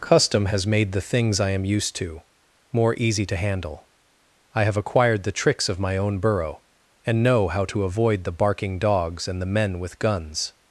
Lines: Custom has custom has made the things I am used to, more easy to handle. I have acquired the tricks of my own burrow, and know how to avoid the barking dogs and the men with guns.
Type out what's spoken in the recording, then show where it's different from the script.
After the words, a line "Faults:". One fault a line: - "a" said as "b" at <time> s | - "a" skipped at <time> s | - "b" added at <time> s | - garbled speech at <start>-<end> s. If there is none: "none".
Custom has made the things I am used to, more easy to handle. I have acquired the tricks of my own burrow, and know how to avoid the barking dogs and the men with guns.
Faults:
- "custom has" skipped at 0.7 s